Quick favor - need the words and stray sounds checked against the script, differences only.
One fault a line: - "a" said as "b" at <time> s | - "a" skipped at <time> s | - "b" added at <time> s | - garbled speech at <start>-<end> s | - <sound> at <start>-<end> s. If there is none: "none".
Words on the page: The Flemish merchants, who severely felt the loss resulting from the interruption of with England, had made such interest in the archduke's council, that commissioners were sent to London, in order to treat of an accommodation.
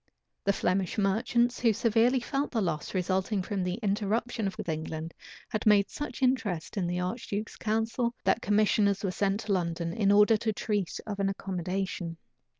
none